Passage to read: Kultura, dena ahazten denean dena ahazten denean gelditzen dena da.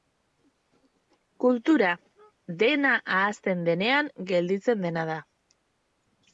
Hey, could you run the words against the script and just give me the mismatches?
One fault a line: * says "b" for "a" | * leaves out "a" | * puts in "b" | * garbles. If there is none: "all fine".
* leaves out "dena ahazten denean"